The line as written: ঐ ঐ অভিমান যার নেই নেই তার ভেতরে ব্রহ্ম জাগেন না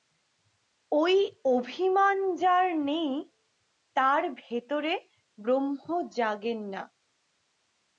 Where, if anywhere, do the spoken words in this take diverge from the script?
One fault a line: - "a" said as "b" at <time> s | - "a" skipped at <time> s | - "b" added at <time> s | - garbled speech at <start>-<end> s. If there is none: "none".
- "ঐ" skipped at 1.0 s
- "নেই" skipped at 3.1 s